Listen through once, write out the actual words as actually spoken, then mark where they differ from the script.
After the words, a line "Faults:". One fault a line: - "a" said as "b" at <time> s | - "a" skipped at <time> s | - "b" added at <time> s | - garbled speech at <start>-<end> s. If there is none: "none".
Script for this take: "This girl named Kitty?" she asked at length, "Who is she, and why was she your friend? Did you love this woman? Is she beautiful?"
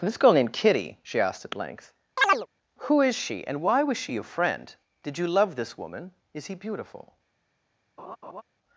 "This girl named Kitty?" she asked at length, "Who is she, and why was she your friend? Did you love this woman? Is he beautiful?"
Faults:
- "she" said as "he" at 6.5 s